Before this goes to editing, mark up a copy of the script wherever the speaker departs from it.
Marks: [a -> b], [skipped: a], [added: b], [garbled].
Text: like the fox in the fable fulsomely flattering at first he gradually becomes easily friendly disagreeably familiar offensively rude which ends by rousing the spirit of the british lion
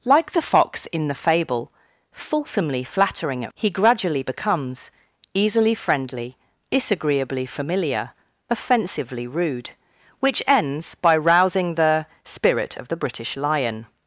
like the fox in the fable fulsomely flattering at [skipped: first] he gradually becomes easily friendly disagreeably familiar offensively rude which ends by rousing the spirit of the british lion